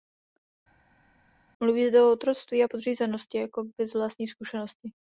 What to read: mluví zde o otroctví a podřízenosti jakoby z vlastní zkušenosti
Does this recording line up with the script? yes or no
yes